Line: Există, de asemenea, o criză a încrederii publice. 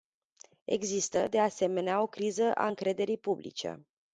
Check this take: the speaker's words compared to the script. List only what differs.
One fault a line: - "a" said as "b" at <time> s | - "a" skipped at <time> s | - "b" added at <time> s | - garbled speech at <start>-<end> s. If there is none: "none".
none